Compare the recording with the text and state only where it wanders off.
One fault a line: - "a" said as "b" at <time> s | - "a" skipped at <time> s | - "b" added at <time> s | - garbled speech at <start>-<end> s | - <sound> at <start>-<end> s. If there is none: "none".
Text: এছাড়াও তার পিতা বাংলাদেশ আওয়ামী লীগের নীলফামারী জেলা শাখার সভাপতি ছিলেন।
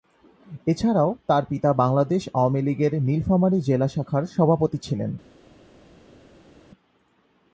none